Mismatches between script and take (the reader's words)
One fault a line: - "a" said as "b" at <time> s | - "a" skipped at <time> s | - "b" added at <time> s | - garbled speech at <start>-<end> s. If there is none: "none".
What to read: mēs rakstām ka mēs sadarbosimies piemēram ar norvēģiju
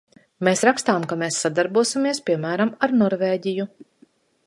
none